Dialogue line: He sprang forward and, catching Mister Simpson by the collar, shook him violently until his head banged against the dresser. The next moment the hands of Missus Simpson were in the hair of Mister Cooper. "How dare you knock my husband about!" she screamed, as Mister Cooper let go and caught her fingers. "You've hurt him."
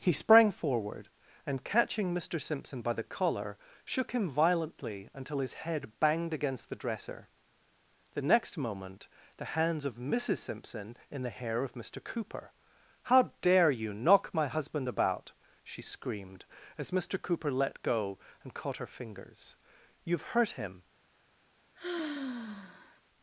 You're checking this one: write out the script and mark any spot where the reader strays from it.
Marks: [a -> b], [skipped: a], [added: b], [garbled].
He sprang forward and, catching Mister Simpson by the collar, shook him violently until his head banged against the dresser. The next moment the hands of Missus Simpson [skipped: were] in the hair of Mister Cooper. "How dare you knock my husband about!" she screamed, as Mister Cooper let go and caught her fingers. "You've hurt him."